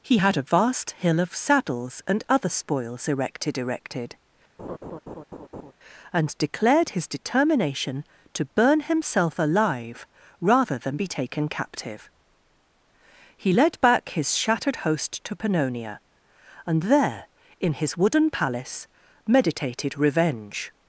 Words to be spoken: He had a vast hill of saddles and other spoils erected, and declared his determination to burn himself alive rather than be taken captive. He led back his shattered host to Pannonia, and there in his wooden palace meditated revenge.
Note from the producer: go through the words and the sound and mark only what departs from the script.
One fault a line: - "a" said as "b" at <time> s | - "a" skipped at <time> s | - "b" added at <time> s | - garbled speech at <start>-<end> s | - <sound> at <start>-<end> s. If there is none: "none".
- "erected" added at 3.6 s
- laugh at 4.6-5.7 s